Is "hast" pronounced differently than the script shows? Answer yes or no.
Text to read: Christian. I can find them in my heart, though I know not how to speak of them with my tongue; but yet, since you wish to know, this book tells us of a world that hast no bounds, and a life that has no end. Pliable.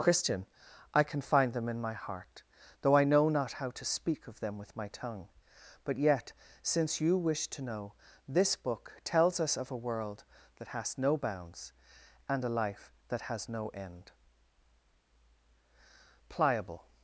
yes